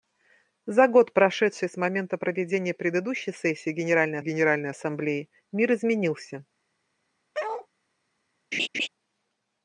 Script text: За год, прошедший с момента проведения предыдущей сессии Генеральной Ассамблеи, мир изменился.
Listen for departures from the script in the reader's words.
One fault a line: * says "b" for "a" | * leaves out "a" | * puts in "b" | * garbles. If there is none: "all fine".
* puts in "Генеральной"